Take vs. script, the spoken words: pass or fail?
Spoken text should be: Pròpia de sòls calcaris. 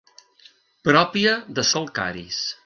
fail